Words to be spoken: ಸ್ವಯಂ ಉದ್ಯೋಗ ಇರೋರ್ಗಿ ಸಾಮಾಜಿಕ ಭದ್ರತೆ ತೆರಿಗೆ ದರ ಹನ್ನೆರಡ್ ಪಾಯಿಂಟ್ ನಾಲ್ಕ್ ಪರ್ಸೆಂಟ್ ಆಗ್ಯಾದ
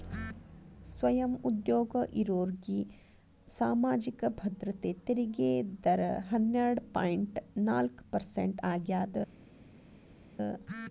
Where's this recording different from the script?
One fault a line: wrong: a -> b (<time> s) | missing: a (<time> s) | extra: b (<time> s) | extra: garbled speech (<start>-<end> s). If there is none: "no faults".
no faults